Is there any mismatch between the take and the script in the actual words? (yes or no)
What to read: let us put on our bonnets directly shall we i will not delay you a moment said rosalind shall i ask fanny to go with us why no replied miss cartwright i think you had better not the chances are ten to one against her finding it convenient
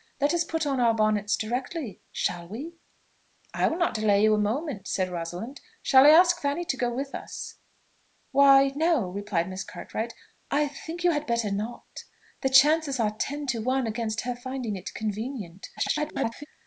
yes